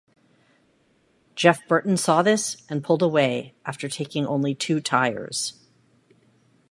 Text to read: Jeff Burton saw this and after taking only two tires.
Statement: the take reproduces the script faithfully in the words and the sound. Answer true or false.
false